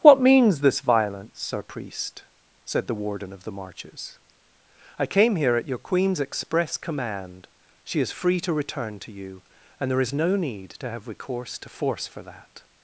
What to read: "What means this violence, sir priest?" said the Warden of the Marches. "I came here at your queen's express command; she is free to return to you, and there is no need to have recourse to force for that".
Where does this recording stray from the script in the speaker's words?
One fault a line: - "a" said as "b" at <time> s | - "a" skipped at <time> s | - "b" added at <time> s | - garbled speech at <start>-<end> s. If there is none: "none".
none